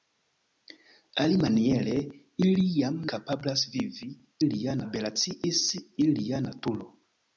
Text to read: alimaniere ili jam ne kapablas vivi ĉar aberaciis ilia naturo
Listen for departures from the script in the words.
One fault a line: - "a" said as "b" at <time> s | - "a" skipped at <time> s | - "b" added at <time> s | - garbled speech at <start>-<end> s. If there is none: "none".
- "ne" skipped at 3.0 s
- "ĉar" said as "ilia" at 4.4 s